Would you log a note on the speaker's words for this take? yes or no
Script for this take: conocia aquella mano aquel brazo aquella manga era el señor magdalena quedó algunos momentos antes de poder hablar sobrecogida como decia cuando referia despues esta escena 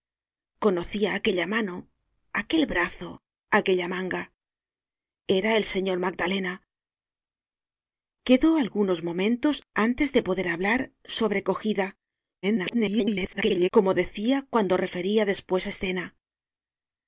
yes